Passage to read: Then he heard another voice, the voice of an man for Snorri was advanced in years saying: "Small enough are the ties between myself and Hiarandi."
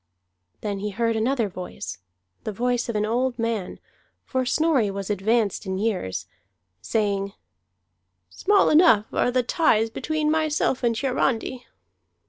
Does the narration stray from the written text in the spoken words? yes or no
yes